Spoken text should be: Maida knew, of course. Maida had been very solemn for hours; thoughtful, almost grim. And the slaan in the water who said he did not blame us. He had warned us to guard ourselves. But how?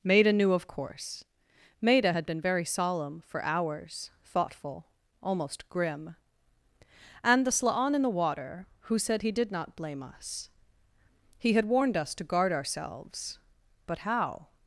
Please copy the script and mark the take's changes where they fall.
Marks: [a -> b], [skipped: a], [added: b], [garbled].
Maida knew, of course. Maida had been very solemn for hours; thoughtful, almost grim. And the slaan in the water who said he did not blame us. He had warned us to guard ourselves. But how?